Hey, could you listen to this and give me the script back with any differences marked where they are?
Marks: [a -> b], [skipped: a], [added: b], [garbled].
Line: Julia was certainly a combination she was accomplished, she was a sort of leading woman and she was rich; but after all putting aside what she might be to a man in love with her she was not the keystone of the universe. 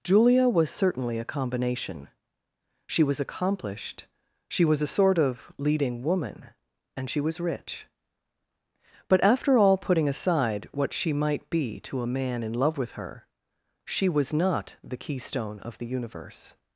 Julia was certainly a combination she was accomplished, she was a sort of leading woman and she was rich; but after all putting aside what she might be to a man in love with her she was not the keystone of the universe.